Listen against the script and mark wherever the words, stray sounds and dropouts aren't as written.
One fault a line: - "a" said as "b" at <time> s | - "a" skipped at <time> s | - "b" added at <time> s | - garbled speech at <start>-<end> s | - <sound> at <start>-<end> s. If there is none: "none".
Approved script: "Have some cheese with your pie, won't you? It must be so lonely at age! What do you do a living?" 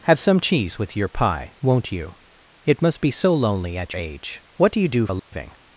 - dropout at 5.2-5.3 s